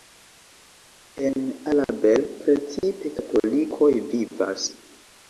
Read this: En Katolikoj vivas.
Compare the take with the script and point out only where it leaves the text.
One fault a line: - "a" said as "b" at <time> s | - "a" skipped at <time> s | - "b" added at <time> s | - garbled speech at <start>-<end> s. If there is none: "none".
- "Alabel precipe" added at 1.7 s